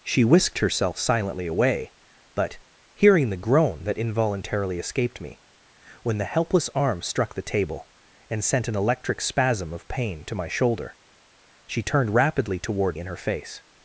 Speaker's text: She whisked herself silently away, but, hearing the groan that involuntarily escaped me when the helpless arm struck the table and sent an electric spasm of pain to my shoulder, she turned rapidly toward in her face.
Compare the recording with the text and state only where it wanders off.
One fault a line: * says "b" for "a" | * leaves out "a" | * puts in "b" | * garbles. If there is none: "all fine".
all fine